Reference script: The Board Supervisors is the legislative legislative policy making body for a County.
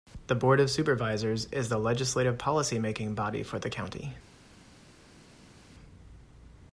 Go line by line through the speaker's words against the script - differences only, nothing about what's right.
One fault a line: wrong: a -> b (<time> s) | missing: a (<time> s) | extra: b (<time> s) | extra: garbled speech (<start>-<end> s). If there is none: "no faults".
extra: of (0.6 s)
missing: legislative (2.4 s)
wrong: a -> the (3.6 s)